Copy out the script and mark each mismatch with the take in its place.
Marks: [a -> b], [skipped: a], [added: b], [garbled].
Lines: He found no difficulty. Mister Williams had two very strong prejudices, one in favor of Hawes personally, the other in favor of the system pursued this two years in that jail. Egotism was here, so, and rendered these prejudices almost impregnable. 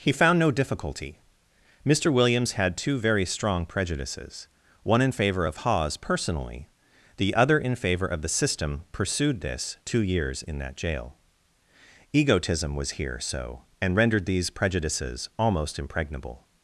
He found no difficulty. Mister Williams had two very strong prejudices, one in favor of Hawes personally, the other in favor of the system pursued this two years in that jail. Egotism was here, so, and rendered these prejudices almost impregnable.